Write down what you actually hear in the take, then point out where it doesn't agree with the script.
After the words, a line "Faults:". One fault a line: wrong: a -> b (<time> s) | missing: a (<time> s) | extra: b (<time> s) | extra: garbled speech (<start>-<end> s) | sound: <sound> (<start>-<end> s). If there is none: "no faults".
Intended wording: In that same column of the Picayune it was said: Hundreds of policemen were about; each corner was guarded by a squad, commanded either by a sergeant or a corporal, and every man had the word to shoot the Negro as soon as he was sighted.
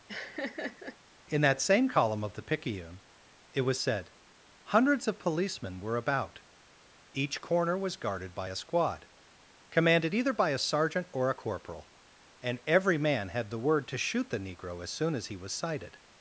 In that same column of the Picayune it was said: Hundreds of policemen were about; each corner was guarded by a squad, commanded either by a sergeant or a corporal, and every man had the word to shoot the Negro as soon as he was sighted.
Faults:
sound: laugh (0.1-1.0 s)